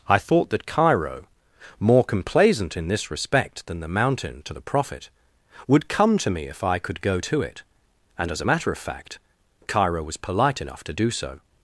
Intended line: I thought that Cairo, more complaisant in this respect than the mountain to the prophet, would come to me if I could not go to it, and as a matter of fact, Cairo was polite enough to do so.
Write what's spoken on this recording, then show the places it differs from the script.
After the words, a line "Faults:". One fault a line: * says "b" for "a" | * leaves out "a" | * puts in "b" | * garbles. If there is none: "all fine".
I thought that Cairo, more complaisant in this respect than the mountain to the prophet, would come to me if I could go to it, and as a matter of fact, Cairo was polite enough to do so.
Faults:
* leaves out "not"